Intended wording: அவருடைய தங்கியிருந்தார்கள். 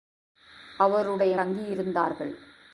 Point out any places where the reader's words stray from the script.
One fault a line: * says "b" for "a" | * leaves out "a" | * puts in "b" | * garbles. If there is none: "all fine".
all fine